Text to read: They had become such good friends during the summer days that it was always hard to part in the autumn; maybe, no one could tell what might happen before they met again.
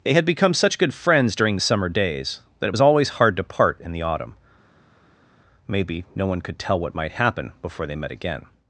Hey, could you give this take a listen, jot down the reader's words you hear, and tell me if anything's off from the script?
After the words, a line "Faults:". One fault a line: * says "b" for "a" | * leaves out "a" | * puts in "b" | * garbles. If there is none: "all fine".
They had become such good friends during the summer days that it was always hard to part in the autumn; maybe, no one could tell what might happen before they met again.
Faults:
all fine